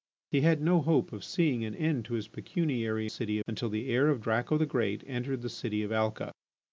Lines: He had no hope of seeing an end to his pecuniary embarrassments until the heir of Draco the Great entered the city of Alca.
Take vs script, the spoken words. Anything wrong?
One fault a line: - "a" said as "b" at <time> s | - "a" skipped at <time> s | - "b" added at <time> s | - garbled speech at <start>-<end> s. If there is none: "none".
- "embarrassments" said as "city" at 3.0 s